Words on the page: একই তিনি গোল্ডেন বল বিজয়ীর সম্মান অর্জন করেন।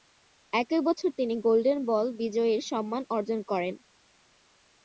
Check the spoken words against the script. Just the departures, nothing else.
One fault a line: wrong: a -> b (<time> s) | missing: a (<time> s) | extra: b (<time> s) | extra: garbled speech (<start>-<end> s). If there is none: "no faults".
extra: বছর (0.9 s)